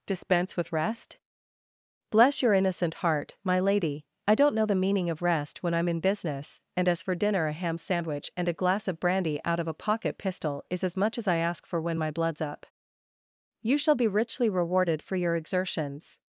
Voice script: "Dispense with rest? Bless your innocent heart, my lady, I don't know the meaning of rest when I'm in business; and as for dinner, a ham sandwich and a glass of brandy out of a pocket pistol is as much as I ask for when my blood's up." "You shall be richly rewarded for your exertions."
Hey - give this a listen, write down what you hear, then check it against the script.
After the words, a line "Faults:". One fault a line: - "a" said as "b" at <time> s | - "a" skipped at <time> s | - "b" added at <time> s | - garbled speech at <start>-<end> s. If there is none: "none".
"Dispense with rest? Bless your innocent heart, my lady, I don't know the meaning of rest when I'm in business; and as for dinner, a ham sandwich and a glass of brandy out of a pocket pistol is as much as I ask for when my blood's up." "You shall be richly rewarded for your exertions."
Faults:
none